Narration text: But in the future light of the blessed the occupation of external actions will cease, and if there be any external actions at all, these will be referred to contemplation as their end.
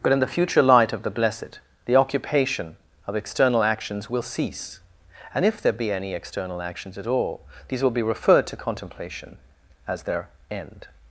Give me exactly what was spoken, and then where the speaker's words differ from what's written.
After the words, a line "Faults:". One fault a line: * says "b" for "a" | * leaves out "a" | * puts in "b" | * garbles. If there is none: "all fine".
But in the future light of the blessed the occupation of external actions will cease, and if there be any external actions at all, these will be referred to contemplation as their end.
Faults:
all fine